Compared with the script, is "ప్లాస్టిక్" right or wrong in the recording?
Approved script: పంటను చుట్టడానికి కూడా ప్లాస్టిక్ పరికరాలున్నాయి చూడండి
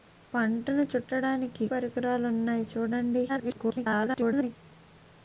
wrong